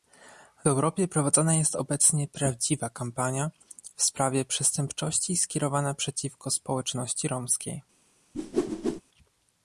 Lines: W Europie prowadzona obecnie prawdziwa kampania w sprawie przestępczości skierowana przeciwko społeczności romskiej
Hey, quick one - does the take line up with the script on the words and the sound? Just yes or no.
no